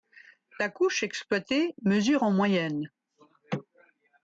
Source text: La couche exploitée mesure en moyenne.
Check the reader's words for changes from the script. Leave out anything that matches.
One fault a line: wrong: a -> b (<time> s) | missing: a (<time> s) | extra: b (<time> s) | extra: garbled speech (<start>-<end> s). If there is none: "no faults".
no faults